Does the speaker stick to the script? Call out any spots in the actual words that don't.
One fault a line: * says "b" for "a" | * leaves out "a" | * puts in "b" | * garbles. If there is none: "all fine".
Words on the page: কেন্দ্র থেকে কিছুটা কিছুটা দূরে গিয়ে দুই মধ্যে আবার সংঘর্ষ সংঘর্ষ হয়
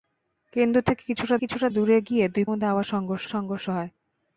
all fine